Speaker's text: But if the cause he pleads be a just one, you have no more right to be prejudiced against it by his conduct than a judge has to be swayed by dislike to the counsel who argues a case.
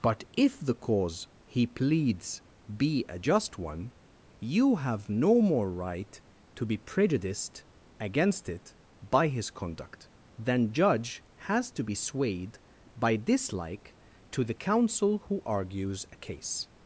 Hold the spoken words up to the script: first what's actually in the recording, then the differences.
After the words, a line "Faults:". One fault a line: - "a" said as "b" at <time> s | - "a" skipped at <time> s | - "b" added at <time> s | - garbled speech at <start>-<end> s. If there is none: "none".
But if the cause he pleads be a just one, you have no more right to be prejudiced against it by his conduct than judge has to be swayed by dislike to the counsel who argues a case.
Faults:
- "a" skipped at 10.7 s